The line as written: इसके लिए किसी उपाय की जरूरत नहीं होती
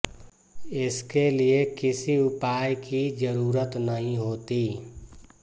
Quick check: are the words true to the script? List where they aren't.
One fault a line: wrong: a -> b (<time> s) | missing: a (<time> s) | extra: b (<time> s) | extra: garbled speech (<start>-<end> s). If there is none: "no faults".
no faults